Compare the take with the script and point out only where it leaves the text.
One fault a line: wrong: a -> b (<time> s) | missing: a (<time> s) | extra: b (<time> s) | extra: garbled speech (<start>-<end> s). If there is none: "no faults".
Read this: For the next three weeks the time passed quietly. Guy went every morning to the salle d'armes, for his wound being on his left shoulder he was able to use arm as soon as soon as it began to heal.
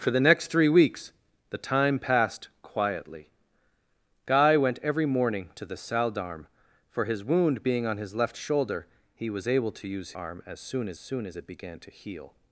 no faults